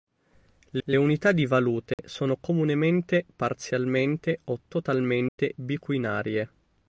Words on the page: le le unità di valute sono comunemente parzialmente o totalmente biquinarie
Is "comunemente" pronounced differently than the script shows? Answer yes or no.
no